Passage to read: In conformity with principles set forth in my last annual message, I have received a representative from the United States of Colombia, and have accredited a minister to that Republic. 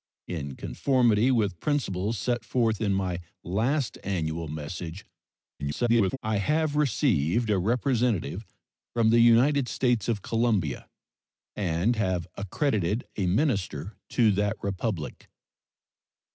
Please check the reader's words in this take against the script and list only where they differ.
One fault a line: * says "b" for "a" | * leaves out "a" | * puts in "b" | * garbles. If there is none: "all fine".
* garbles